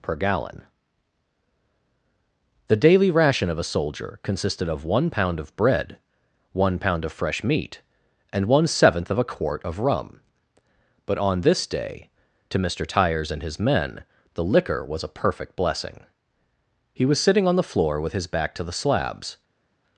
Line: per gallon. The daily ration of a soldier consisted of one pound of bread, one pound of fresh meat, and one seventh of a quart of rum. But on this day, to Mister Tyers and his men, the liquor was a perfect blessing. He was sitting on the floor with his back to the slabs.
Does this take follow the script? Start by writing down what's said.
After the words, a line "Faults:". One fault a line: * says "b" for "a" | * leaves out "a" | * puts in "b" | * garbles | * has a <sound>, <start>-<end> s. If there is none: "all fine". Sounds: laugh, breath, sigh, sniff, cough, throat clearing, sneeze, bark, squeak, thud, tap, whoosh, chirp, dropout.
per gallon. The daily ration of a soldier consisted of one pound of bread, one pound of fresh meat, and one seventh of a quart of rum. But on this day, to Mister Tyers and his men, the liquor was a perfect blessing. He was sitting on the floor with his back to the slabs.
Faults:
all fine